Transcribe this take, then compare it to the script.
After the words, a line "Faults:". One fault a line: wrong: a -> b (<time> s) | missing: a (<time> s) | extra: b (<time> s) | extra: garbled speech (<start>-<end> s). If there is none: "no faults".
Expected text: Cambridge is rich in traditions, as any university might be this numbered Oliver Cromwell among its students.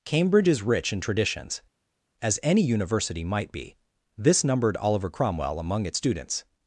Cambridge is rich in traditions, as any university might be this numbered Oliver Cromwell among its students.
Faults:
no faults